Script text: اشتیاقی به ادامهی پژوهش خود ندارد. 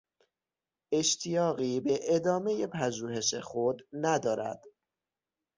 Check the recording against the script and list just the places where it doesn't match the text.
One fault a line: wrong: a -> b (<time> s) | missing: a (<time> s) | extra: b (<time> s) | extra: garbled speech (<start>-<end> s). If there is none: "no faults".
no faults